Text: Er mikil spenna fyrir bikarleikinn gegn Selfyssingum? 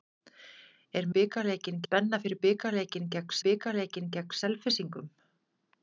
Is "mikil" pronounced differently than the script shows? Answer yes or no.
yes